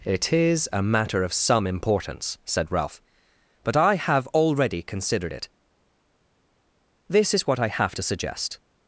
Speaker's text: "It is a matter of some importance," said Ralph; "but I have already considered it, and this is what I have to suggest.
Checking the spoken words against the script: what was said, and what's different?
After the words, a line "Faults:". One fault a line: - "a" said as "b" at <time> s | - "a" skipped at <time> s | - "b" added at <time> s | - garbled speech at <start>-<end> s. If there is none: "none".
"It is a matter of some importance," said Ralph; "but I have already considered it, this is what I have to suggest.
Faults:
- "and" skipped at 5.5 s